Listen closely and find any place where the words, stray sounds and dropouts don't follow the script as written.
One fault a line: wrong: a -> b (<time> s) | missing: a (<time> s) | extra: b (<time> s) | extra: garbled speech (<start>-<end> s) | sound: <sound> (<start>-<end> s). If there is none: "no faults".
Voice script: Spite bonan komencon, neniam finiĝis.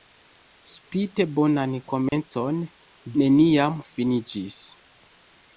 sound: dropout (2.1-2.1 s)